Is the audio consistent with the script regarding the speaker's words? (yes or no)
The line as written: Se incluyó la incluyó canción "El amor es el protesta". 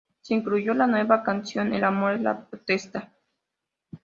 no